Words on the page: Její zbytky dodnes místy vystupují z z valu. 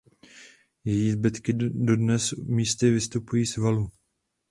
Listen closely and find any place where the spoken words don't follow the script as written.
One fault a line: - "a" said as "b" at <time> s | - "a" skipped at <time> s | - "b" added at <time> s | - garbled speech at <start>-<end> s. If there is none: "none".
- "z" skipped at 3.6 s